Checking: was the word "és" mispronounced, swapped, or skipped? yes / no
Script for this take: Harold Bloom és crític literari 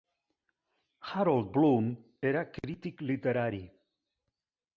yes